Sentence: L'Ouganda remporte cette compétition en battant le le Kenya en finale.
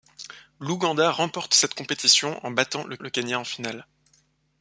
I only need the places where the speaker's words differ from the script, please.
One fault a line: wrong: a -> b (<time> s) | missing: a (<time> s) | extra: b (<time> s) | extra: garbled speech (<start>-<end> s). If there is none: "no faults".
no faults